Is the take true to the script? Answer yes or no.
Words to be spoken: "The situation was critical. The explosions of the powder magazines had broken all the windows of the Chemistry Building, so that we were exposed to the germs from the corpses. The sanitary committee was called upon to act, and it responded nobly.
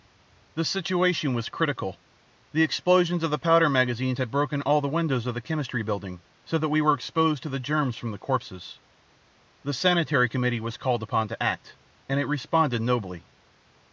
yes